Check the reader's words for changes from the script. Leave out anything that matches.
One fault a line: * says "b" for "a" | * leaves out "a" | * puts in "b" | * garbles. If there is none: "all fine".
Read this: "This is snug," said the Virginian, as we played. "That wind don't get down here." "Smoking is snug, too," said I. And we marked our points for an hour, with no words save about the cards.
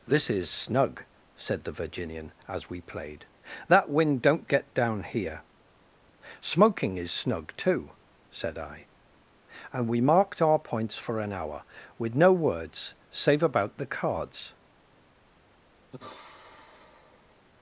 all fine